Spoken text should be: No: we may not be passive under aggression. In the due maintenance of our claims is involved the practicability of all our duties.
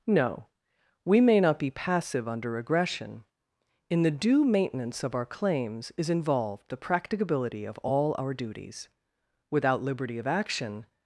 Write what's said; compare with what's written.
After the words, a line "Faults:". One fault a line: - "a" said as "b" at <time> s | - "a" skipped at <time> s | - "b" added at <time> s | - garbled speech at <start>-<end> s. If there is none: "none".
No: we may not be passive under aggression. In the due maintenance of our claims is involved the practicability of all our duties. Without liberty of action
Faults:
- "Without liberty of action" added at 9.5 s